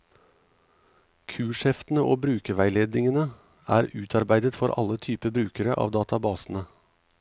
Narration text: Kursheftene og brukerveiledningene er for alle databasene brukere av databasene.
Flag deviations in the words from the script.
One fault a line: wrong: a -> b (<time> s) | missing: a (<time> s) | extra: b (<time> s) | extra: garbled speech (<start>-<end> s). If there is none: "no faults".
extra: utarbeidet (4.0 s)
wrong: databasene -> typer (5.1 s)